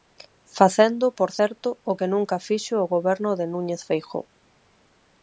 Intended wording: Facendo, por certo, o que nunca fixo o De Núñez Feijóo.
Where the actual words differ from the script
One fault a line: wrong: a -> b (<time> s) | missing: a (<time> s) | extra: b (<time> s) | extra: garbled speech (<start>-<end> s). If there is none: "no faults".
extra: Goberno (2.9 s)